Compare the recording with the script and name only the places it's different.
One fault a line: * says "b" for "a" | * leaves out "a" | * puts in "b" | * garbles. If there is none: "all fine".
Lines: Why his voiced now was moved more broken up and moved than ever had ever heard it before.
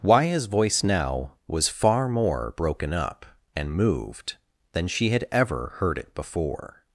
* says "voice" for "voiced"
* says "far" for "moved"
* says "she" for "ever"